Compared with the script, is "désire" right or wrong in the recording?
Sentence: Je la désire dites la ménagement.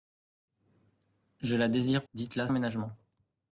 right